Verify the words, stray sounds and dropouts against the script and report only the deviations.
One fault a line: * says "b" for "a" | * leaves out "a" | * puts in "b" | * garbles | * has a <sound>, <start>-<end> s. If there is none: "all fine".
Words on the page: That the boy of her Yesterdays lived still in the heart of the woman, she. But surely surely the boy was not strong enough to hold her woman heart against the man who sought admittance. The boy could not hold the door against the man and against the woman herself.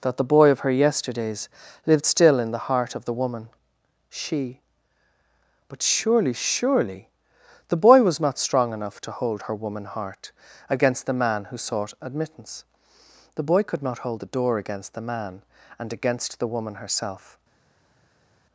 all fine